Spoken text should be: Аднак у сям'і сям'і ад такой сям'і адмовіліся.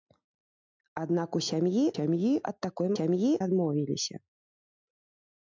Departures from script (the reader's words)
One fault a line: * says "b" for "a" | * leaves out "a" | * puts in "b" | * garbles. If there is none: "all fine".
all fine